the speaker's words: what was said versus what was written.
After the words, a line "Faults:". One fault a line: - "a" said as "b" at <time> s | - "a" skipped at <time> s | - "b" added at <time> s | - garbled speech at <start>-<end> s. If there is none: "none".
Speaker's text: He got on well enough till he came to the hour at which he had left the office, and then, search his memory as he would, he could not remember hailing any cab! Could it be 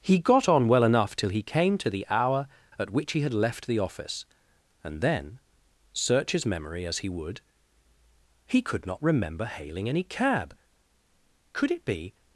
He got on well enough till he came to the hour at which he had left the office, and then, search his memory as he would, he could not remember hailing any cab! Could it be
Faults:
none